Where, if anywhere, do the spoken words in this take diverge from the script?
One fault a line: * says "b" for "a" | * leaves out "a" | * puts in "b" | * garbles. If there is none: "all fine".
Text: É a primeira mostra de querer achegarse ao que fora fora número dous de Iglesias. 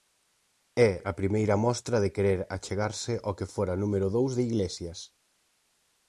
* leaves out "fora"